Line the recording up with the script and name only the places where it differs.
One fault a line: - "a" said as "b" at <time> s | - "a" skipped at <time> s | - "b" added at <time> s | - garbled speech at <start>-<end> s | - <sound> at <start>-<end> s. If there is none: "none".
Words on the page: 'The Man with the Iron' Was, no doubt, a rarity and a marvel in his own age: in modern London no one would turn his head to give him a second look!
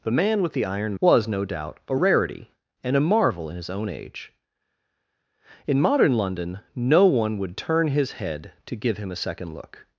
none